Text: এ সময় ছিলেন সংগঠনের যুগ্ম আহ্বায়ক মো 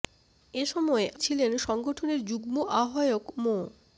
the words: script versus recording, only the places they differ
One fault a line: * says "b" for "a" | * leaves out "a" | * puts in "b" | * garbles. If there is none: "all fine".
all fine